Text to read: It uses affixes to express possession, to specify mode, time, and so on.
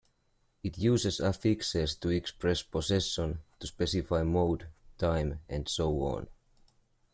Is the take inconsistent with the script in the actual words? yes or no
no